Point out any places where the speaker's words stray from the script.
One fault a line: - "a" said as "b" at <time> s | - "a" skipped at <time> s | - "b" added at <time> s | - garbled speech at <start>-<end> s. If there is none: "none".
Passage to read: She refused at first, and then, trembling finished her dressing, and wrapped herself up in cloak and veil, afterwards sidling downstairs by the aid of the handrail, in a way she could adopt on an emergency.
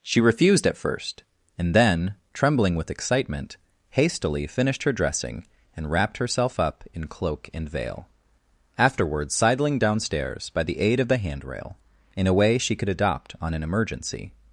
- "with excitement hastily" added at 2.8 s